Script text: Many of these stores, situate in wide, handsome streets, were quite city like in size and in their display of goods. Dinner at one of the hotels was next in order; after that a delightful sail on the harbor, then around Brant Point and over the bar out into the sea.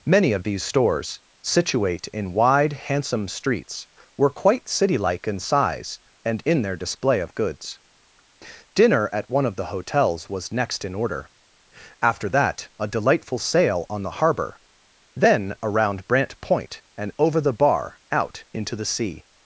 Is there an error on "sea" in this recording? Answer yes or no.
no